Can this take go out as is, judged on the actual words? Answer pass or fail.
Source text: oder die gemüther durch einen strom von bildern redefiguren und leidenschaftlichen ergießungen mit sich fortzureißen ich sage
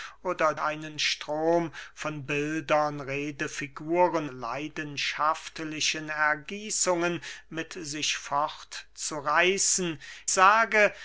fail